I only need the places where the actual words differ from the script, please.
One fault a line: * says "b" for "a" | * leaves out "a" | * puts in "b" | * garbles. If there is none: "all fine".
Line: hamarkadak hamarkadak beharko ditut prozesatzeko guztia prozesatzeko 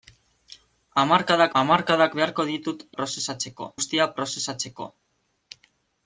all fine